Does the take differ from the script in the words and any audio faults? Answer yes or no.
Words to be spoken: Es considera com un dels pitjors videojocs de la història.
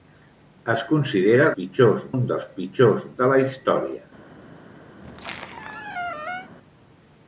yes